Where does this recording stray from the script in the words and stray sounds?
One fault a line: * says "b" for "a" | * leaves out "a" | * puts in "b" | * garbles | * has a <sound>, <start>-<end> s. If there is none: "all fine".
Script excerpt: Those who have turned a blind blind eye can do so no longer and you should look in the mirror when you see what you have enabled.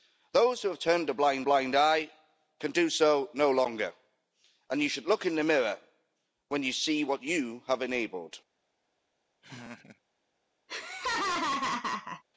* has a laugh, 9.4-10.0 s
* has a laugh, 10.7-12.2 s